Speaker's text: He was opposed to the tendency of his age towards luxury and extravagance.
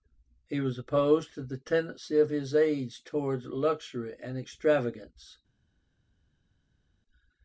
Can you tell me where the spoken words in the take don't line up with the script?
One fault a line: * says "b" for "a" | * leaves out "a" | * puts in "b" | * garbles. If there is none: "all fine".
all fine